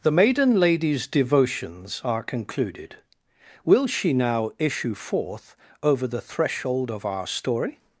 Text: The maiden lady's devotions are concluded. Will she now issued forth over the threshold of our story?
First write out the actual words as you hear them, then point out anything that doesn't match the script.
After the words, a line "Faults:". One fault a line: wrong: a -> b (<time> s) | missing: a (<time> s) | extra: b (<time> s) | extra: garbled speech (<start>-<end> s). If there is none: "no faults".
The maiden lady's devotions are concluded. Will she now issue forth over the threshold of our story?
Faults:
wrong: issued -> issue (4.6 s)